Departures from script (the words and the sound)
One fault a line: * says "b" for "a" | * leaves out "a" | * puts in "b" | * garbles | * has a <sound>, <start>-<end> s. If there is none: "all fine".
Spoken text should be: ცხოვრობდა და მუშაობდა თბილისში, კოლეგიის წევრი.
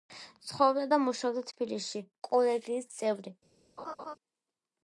* has a laugh, 3.8-4.2 s